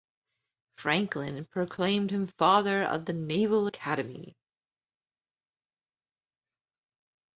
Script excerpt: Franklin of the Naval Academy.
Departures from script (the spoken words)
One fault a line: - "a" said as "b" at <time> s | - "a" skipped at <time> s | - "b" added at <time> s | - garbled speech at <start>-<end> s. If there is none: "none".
- "proclaimed him Father" added at 1.4 s